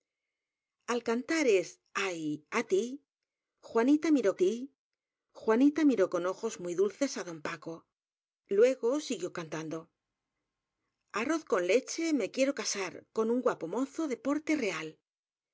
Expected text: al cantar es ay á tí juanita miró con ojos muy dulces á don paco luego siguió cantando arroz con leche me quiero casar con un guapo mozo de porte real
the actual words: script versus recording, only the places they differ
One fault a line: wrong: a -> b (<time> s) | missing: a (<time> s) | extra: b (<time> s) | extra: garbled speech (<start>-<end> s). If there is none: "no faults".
extra: tí juanita miró (4.4 s)